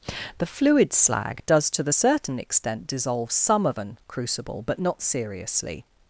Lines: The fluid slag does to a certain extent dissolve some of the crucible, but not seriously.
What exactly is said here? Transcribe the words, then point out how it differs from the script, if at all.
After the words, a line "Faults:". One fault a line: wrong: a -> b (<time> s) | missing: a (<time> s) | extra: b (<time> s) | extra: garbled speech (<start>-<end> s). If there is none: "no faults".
The fluid slag does to the certain extent dissolve some of an crucible, but not seriously.
Faults:
wrong: a -> the (1.8 s)
wrong: the -> an (3.8 s)